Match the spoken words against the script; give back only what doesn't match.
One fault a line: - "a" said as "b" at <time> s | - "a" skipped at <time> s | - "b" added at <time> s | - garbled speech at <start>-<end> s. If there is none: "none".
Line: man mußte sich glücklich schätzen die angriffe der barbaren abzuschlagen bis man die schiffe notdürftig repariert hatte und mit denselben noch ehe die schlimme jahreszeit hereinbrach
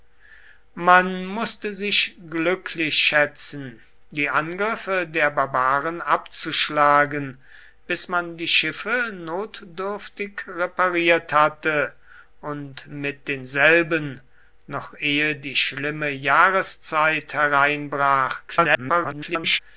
- garbled speech at 18.5-19.6 s